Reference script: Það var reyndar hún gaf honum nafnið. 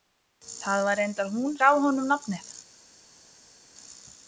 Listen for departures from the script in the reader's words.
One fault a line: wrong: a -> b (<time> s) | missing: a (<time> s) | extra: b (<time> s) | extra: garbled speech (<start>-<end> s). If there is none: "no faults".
no faults